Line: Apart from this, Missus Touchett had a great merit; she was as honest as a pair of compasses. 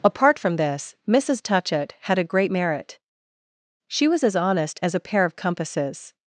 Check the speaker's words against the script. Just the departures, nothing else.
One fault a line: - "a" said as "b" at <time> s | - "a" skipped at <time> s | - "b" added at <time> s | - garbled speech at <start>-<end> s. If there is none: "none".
none